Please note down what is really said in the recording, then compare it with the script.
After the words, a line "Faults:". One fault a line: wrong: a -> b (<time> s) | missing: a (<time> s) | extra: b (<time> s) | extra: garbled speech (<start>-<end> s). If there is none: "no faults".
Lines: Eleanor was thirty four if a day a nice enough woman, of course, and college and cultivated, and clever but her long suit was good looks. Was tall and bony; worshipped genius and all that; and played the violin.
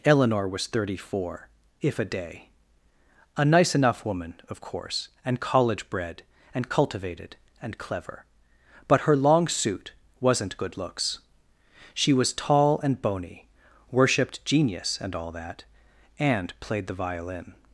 Eleanor was thirty four if a day a nice enough woman, of course, and college bred, and cultivated, and clever but her long suit wasn't good looks. She was tall and bony; worshipped genius and all that; and played the violin.
Faults:
extra: bred (5.9 s)
wrong: was -> wasn't (10.2 s)
extra: She (11.9 s)